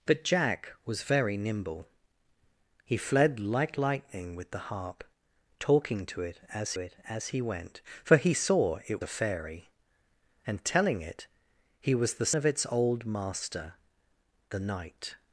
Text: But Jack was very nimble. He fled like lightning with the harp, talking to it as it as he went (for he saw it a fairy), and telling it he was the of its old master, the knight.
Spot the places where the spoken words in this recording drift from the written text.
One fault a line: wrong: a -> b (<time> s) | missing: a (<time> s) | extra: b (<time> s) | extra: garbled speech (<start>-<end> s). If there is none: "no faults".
no faults